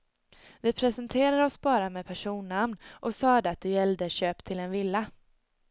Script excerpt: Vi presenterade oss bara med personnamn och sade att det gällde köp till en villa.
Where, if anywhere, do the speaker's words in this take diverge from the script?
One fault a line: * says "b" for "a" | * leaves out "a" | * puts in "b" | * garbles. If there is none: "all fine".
all fine